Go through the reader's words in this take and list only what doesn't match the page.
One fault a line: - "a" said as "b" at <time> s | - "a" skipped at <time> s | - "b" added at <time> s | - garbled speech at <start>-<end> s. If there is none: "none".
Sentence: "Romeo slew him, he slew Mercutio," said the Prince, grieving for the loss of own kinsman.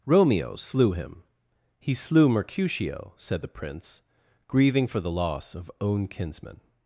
none